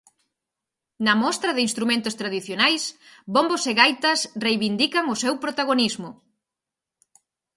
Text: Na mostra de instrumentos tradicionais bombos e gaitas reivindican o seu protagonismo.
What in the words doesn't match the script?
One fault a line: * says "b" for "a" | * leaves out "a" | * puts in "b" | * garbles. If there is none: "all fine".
all fine